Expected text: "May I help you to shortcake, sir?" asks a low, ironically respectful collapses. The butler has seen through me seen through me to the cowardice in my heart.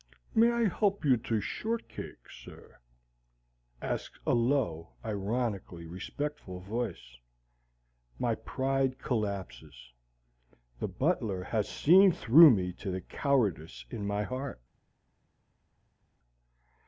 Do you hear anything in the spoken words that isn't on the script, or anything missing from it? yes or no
yes